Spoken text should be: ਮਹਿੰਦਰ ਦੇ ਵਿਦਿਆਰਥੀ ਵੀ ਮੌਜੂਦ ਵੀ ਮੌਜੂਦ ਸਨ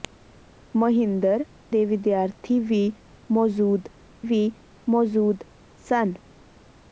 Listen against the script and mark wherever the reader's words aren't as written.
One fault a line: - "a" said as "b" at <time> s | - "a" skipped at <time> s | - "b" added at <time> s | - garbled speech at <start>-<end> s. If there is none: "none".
none